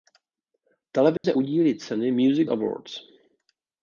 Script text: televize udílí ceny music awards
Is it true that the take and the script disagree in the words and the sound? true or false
true